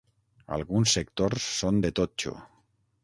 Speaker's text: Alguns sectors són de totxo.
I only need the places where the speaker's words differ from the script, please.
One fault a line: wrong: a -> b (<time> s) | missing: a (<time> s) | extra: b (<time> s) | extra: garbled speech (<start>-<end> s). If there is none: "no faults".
no faults